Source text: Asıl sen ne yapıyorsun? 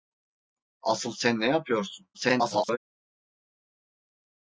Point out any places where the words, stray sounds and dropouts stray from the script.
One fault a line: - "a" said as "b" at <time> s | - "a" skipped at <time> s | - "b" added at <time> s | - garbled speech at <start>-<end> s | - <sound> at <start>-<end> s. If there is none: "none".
- garbled speech at 2.1-2.8 s